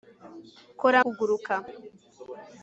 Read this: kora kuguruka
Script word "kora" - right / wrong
right